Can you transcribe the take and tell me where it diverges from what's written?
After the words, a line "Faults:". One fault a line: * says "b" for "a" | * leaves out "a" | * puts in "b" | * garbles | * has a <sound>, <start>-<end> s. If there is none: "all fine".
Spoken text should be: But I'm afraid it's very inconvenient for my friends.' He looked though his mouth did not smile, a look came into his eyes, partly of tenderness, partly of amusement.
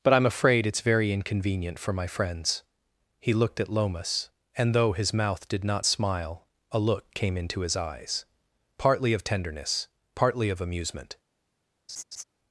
But I'm afraid it's very inconvenient for my friends.' He looked at Lomas, and though his mouth did not smile, a look came into his eyes, partly of tenderness, partly of amusement.
Faults:
* puts in "at Lomas and"
* has a laugh, 11.9-12.2 s